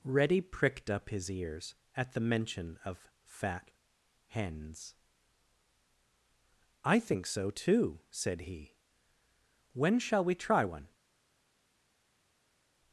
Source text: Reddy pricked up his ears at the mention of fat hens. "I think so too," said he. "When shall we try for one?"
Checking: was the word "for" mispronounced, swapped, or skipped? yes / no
yes